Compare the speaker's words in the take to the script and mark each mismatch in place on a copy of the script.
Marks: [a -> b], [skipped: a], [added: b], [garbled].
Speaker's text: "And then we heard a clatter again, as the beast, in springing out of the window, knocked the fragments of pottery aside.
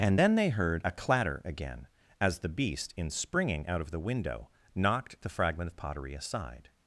"And then [we -> they] heard a clatter again, as the beast, in springing out of the window, knocked the [fragments -> fragment] of pottery aside.